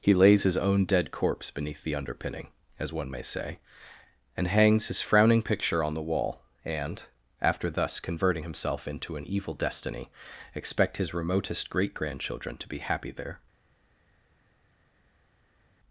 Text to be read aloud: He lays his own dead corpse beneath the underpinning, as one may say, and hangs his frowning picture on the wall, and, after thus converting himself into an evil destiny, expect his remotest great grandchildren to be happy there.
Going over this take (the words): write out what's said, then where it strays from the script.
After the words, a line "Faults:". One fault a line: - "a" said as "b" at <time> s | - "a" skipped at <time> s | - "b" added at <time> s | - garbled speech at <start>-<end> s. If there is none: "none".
He lays his own dead corpse beneath the underpinning, as one may say, and hangs his frowning picture on the wall, and, after thus converting himself into an evil destiny, expect his remotest great grandchildren to be happy there.
Faults:
none